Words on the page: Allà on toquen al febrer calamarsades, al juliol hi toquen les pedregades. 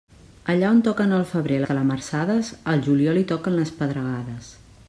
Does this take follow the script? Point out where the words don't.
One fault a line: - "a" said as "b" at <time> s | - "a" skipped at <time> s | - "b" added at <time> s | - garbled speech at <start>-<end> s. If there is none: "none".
none